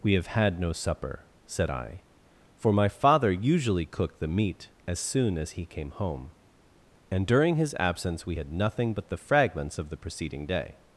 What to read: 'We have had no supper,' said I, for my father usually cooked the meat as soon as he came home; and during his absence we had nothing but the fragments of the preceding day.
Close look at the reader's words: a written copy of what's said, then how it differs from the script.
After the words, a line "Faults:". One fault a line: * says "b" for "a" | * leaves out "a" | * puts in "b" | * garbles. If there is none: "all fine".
'We have had no supper,' said I, for my father usually cooked the meat as soon as he came home; and during his absence we had nothing but the fragments of the preceding day.
Faults:
all fine